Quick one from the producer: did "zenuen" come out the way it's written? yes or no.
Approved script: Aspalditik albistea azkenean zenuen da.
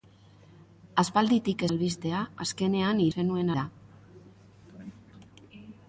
yes